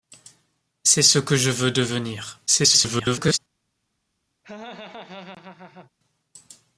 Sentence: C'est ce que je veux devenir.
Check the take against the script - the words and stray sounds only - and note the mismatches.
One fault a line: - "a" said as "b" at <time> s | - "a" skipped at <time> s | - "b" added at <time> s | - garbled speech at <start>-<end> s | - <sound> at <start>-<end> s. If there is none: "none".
- garbled speech at 2.5-3.4 s
- laugh at 4.4-5.9 s